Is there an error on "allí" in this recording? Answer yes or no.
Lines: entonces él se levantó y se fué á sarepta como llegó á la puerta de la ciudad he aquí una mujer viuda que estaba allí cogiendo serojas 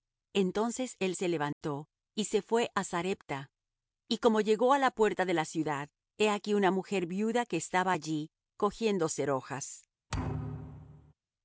no